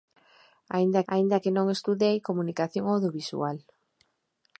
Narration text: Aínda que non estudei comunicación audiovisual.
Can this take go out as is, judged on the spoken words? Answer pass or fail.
fail